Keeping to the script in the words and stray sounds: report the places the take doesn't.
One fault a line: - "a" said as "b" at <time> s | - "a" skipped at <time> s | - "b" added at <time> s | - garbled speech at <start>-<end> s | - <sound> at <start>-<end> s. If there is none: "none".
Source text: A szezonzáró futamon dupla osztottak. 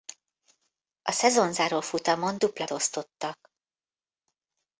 none